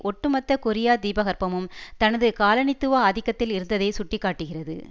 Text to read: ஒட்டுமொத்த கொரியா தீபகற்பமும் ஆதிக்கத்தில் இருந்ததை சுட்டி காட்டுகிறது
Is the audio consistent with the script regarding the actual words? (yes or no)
no